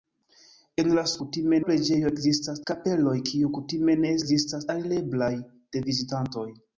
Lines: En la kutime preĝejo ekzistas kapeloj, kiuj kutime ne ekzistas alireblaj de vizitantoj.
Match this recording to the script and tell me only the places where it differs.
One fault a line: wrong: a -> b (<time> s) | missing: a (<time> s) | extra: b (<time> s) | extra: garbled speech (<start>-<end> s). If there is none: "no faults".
no faults